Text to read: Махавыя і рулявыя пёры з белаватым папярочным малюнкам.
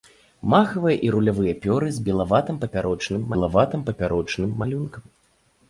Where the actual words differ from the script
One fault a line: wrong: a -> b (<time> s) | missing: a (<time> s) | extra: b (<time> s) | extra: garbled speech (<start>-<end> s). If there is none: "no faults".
extra: белаватым папярочным (3.3 s)